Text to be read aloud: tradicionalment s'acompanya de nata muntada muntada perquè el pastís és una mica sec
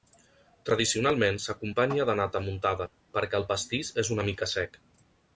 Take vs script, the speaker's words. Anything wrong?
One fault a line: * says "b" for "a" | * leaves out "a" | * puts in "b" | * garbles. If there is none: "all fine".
* leaves out "muntada"